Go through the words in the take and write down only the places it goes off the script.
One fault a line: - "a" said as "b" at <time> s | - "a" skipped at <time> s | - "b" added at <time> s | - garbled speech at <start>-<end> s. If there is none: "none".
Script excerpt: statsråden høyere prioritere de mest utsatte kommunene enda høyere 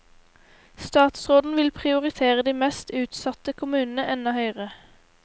- "høyere" said as "vil" at 1.6 s